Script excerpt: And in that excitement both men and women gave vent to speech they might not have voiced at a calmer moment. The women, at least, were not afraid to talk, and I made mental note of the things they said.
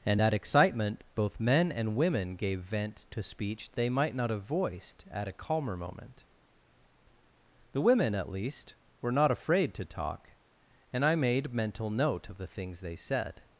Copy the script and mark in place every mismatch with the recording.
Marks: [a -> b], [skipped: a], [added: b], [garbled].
And [skipped: in] that excitement both men and women gave vent to speech they might not have voiced at a calmer moment. The women, at least, were not afraid to talk, and I made mental note of the things they said.